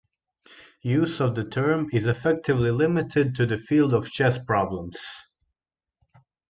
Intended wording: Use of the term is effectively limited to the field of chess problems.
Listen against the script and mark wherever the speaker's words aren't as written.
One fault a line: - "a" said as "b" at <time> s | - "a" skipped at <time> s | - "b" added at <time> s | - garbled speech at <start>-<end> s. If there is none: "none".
none